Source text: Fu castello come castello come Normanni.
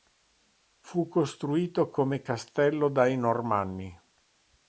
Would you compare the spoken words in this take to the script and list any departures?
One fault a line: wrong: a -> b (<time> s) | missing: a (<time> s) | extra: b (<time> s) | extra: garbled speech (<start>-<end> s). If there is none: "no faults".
wrong: castello -> costruito (1.1 s)
wrong: come -> dai (2.9 s)